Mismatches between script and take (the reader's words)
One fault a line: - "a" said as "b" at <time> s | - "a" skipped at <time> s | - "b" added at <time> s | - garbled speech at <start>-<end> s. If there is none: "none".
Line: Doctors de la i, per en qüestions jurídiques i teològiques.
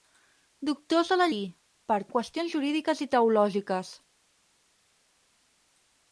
none